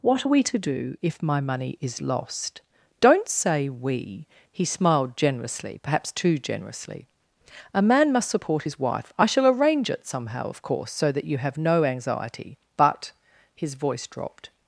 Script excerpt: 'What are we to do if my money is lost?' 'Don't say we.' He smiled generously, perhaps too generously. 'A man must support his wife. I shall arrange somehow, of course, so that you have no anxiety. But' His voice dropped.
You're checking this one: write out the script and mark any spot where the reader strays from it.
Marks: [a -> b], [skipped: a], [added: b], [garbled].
'What are we to do if my money is lost?' 'Don't say we.' He smiled generously, perhaps too generously. 'A man must support his wife. I shall arrange [added: it] somehow, of course, so that you have no anxiety. But' His voice dropped.